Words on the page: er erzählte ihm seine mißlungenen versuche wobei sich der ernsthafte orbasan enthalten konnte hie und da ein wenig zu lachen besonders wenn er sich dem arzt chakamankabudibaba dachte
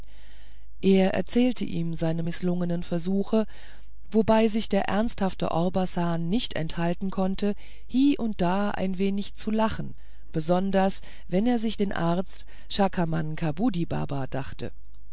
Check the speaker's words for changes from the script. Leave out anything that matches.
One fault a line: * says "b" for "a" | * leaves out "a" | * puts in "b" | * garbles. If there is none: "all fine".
* puts in "nicht"
* says "den" for "dem"